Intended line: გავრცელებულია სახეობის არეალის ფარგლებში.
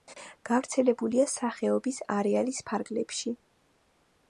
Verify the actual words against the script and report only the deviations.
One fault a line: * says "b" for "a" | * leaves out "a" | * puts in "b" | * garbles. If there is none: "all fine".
all fine